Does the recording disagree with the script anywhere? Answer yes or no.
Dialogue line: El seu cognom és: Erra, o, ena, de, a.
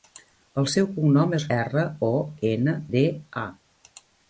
no